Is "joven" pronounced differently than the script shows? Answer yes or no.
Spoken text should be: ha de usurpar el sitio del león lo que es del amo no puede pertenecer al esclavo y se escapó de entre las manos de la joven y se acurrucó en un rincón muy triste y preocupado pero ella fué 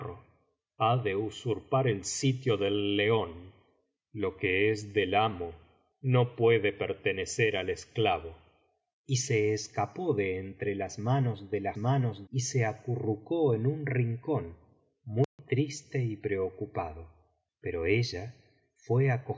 yes